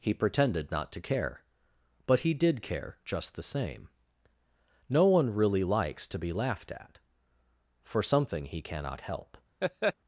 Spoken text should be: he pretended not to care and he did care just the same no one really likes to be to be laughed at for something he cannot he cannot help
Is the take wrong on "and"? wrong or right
wrong